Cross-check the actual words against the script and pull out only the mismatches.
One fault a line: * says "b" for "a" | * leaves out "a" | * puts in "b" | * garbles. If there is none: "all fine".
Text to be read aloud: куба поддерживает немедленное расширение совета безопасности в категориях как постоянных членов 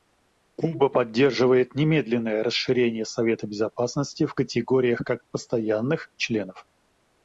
all fine